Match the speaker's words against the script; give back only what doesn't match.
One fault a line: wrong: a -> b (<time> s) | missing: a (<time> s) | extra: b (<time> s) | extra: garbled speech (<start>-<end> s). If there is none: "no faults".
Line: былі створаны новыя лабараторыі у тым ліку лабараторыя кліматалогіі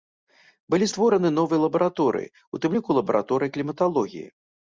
no faults